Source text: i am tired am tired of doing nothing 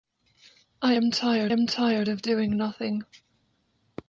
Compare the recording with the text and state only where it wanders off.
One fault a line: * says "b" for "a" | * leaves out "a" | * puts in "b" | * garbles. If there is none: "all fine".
all fine